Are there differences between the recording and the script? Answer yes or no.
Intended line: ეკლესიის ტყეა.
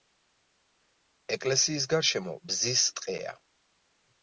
yes